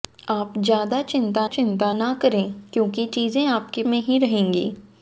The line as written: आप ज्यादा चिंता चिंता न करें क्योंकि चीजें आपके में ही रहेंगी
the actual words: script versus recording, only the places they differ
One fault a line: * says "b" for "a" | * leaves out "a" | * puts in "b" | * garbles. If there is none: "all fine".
all fine